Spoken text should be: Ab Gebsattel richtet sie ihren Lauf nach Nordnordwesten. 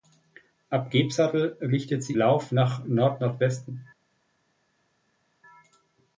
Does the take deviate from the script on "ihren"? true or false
true